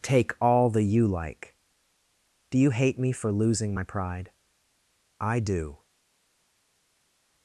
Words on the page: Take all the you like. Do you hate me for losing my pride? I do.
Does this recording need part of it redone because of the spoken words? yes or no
no